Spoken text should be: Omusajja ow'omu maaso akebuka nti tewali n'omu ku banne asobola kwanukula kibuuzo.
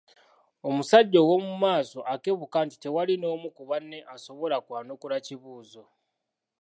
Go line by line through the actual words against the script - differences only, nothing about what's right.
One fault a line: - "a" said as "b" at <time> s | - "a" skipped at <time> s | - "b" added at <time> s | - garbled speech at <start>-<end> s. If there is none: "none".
none